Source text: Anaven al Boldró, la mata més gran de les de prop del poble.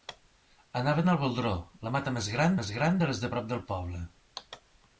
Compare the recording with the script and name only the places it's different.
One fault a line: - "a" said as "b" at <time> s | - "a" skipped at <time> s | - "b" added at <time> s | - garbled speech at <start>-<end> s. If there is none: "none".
- "més gran" added at 2.6 s